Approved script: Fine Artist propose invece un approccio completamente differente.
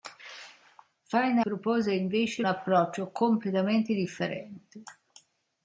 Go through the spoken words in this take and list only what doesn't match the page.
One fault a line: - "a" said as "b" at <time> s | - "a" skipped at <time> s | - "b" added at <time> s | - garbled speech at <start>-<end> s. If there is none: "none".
- "Artist" skipped at 1.4 s
- "un" skipped at 2.4 s